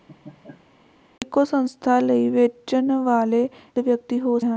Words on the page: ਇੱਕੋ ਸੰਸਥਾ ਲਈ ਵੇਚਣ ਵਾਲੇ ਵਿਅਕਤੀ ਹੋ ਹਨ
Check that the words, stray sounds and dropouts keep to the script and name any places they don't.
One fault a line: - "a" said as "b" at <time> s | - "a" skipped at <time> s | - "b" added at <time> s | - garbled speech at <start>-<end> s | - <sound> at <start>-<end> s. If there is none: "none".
- laugh at 0.1-0.7 s